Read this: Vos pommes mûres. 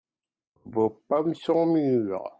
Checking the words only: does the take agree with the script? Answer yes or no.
no